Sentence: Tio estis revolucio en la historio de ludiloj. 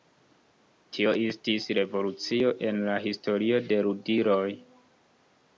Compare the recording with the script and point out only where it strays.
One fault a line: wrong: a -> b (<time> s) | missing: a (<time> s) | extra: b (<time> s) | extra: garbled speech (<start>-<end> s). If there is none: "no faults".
no faults